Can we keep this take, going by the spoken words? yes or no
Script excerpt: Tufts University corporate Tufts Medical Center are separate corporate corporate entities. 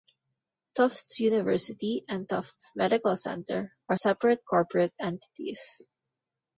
no